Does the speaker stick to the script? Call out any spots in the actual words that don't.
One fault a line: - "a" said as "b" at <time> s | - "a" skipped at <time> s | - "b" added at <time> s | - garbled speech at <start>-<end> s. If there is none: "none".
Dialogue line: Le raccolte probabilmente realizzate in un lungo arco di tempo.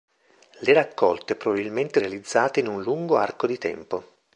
none